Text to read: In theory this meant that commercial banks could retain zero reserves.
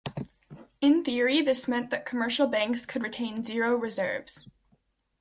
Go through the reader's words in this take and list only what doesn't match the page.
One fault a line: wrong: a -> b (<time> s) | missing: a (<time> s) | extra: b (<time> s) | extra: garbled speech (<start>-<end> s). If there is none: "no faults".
no faults